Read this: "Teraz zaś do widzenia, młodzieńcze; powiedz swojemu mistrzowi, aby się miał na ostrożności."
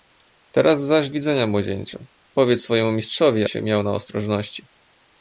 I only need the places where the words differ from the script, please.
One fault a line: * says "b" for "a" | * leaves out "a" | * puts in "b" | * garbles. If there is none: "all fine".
* leaves out "do"
* leaves out "aby"